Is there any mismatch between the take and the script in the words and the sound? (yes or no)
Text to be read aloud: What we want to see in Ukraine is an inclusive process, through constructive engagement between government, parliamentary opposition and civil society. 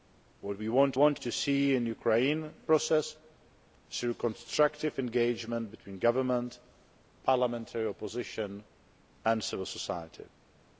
yes